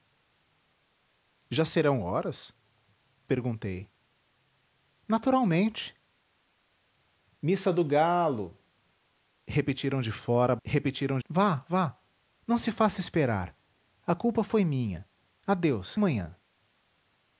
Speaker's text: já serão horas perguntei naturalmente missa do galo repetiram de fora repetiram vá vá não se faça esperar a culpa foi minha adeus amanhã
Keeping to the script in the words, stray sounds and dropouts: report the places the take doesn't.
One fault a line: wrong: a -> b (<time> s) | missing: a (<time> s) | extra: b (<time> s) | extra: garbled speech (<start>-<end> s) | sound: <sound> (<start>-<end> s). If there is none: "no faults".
no faults